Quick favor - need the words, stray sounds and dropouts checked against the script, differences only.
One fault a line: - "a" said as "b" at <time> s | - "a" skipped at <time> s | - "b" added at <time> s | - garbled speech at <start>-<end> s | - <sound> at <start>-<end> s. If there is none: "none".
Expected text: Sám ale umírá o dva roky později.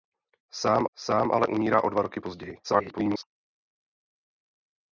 - "sám" added at 1.0 s
- garbled speech at 2.6-3.2 s